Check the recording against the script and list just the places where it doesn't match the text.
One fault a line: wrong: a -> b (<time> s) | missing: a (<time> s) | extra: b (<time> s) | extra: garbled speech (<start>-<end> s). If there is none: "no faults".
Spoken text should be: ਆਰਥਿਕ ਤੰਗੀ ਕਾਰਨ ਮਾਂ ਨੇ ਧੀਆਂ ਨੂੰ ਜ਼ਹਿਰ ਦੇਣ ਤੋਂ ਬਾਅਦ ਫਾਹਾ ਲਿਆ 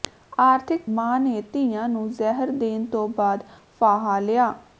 missing: ਤੰਗੀ ਕਾਰਨ (0.8 s)